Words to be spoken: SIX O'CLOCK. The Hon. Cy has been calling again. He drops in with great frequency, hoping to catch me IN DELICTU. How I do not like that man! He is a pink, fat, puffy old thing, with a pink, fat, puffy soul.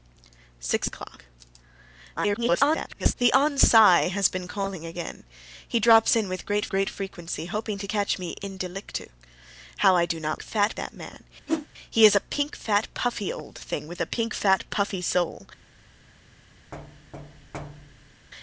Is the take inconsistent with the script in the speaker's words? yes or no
yes